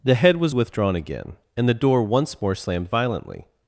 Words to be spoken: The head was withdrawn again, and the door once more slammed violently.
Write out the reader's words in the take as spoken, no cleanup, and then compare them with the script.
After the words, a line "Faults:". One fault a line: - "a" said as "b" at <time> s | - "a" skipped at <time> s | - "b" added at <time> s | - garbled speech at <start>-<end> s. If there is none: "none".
The head was withdrawn again, and the door once more slammed violently.
Faults:
none